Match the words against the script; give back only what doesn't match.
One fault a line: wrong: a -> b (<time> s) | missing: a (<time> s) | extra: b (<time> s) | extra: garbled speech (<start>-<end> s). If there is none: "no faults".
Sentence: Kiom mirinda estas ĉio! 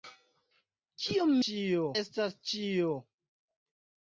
wrong: mirinda -> ĉio (1.5 s)